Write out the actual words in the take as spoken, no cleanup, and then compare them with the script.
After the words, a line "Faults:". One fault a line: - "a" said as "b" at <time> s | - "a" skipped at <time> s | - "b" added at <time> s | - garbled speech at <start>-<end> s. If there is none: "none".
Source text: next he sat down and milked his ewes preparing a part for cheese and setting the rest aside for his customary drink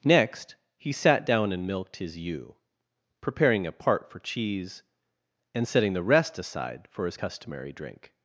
next he sat down and milked his ewe preparing a part for cheese and setting the rest aside for his customary drink
Faults:
- "ewes" said as "ewe" at 2.2 s